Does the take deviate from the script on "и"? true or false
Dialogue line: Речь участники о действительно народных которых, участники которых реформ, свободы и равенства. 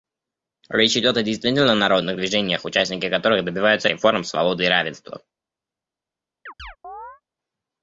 false